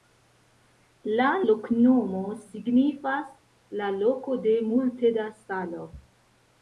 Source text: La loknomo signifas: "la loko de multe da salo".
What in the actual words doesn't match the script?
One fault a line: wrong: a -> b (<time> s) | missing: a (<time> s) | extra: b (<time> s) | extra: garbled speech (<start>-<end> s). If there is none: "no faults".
no faults